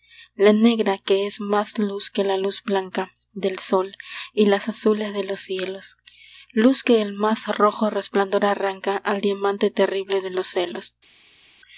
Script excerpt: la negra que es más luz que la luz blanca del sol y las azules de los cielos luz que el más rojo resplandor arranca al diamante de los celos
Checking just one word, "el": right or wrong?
right